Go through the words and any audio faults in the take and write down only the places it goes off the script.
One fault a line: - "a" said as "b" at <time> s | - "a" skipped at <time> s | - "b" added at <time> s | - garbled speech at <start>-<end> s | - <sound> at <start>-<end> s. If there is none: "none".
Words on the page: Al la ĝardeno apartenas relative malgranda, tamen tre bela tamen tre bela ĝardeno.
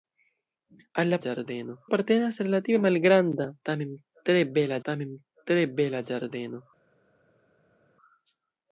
none